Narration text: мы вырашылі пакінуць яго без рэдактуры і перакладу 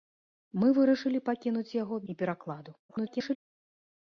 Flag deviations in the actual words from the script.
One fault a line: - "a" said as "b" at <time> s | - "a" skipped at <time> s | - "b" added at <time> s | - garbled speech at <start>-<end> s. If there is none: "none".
- "без рэдактуры" skipped at 2.0 s
- garbled speech at 2.9-3.4 s